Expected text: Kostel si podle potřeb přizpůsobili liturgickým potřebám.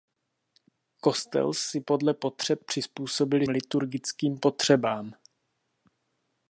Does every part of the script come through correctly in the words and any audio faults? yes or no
yes